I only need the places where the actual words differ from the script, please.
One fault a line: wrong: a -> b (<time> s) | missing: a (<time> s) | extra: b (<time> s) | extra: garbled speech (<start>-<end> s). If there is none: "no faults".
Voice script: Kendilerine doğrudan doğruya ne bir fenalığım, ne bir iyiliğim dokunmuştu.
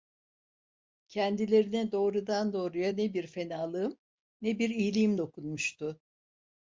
no faults